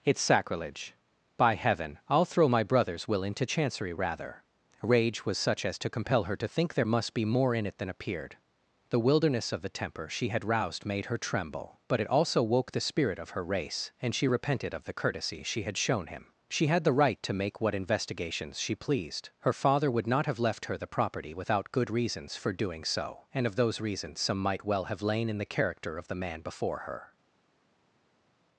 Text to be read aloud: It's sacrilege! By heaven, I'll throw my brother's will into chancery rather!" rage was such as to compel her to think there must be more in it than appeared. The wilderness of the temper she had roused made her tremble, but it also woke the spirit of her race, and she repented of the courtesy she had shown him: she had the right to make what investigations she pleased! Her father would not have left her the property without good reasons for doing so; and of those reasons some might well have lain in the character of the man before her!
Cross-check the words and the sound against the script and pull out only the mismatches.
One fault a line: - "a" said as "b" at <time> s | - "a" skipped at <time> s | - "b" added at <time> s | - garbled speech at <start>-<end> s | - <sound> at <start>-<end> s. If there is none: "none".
none